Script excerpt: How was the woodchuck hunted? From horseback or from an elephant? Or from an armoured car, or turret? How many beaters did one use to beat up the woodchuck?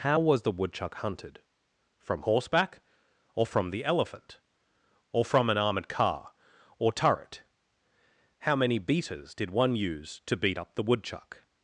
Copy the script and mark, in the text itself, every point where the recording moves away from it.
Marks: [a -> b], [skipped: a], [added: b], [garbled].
How was the woodchuck hunted? From horseback or from [an -> the] elephant? Or from an armoured car, or turret? How many beaters did one use to beat up the woodchuck?